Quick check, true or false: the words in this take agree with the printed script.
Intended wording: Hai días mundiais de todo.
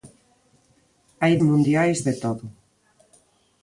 false